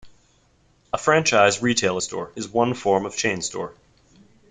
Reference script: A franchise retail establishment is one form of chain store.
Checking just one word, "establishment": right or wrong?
wrong